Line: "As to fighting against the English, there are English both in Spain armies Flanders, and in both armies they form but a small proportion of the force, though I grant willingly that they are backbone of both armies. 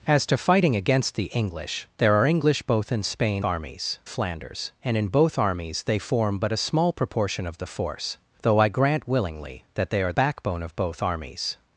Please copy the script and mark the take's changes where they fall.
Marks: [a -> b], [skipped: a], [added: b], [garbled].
"As to fighting against the English, there are English both in Spain armies Flanders, and in both armies they form but a small proportion of the force, though I grant willingly that they are backbone of both armies.